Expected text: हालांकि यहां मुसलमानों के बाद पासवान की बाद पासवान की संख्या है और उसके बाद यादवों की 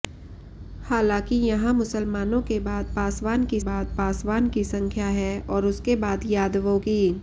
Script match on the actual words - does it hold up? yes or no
yes